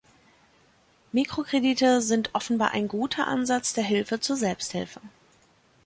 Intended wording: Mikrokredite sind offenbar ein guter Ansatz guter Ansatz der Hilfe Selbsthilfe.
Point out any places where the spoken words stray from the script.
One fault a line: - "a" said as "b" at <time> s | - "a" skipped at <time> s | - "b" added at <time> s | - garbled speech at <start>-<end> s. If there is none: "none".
- "guter Ansatz" skipped at 3.7 s
- "zur" added at 4.2 s